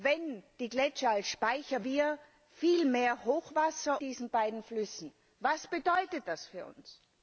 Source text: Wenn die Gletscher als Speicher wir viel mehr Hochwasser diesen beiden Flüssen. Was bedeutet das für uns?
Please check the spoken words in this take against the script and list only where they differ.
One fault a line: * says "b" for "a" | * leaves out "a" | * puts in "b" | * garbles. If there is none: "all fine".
all fine